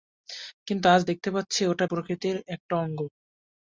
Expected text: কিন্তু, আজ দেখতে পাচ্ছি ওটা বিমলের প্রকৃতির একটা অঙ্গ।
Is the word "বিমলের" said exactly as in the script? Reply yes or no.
no